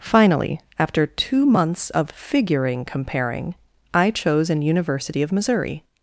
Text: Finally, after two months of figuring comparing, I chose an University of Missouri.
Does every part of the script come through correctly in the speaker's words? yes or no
yes